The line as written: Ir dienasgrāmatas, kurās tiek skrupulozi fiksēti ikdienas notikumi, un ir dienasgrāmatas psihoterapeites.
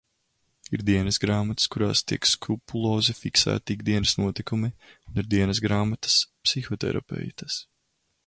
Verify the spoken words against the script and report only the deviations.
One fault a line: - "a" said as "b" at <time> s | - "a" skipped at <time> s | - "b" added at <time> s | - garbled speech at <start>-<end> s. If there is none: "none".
none